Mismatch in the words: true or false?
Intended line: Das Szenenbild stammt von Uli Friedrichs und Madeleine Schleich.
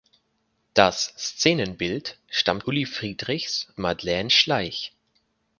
true